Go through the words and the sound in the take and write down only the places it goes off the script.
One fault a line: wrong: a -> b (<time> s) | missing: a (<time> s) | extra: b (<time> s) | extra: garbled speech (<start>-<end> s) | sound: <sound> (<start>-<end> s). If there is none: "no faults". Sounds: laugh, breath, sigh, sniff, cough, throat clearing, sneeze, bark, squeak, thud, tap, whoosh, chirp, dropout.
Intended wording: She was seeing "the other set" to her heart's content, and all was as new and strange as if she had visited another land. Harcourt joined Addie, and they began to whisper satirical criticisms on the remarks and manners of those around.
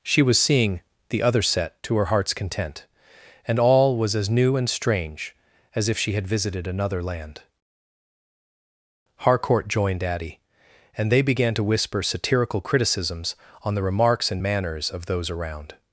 no faults